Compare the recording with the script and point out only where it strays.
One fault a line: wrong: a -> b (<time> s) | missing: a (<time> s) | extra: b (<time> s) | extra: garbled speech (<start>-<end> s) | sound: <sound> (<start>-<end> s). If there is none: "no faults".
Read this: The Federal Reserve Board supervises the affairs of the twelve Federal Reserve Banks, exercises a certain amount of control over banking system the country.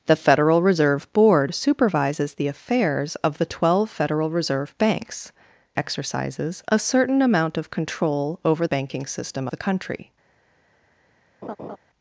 sound: laugh (11.4-11.8 s)